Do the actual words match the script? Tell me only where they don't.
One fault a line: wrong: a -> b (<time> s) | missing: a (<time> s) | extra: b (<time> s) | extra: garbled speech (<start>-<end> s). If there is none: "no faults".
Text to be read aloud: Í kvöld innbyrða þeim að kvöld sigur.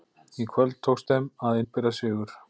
wrong: innbyrða -> tókst (0.9 s)
wrong: kvöld -> innbyrða (1.6 s)